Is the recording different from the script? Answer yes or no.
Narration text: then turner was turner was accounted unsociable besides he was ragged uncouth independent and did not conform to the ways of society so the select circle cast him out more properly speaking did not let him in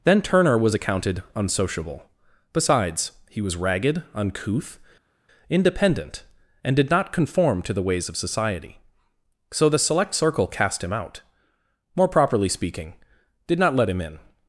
yes